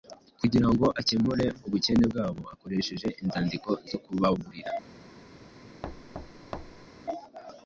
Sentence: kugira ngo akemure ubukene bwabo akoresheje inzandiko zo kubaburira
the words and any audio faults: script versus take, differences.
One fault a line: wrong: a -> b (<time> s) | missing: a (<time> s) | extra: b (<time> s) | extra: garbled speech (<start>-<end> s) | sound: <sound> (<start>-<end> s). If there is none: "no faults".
sound: thud (5.8-6.9 s)